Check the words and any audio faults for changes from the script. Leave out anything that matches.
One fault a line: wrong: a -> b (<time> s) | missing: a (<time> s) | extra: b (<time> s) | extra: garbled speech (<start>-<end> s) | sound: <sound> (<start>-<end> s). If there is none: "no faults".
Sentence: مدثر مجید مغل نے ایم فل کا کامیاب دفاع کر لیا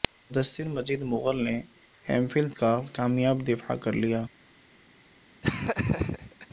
sound: laugh (5.4-6.5 s)